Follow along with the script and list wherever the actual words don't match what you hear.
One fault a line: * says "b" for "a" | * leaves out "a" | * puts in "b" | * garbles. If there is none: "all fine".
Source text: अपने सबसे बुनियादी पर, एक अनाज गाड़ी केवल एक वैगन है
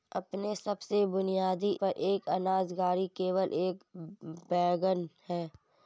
all fine